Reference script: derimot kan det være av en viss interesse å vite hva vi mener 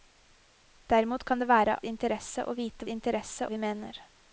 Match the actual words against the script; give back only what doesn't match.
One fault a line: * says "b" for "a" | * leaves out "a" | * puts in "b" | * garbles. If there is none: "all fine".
* leaves out "av en viss"
* says "interesse" for "hva"